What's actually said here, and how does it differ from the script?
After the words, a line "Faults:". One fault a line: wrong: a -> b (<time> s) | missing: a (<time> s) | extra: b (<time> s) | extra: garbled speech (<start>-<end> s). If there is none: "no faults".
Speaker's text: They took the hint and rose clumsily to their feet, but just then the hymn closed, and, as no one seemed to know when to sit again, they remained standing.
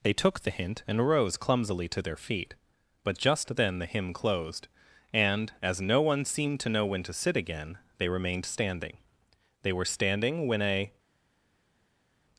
They took the hint and rose clumsily to their feet, but just then the hymn closed, and, as no one seemed to know when to sit again, they remained standing. They were standing when a
Faults:
extra: They were standing when a (9.6 s)